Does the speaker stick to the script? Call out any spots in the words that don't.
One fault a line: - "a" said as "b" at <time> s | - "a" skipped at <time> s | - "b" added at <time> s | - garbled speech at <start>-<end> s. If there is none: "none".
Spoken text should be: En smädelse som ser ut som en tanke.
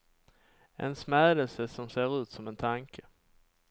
none